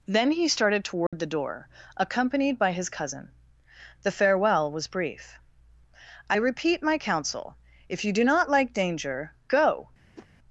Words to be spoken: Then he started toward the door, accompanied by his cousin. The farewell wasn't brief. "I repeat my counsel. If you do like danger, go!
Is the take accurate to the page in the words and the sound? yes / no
no